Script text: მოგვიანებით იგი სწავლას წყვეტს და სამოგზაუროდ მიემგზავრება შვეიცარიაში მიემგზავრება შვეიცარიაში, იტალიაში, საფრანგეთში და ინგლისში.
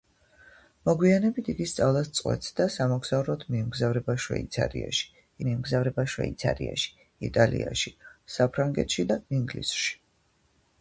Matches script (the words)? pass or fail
pass